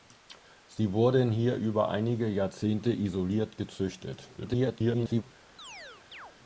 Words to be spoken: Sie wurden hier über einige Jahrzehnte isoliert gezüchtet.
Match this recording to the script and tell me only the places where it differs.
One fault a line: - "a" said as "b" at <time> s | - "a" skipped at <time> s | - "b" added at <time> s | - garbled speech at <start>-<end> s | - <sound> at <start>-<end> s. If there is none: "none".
- garbled speech at 4.4-5.2 s
- chirp at 5.6-6.3 s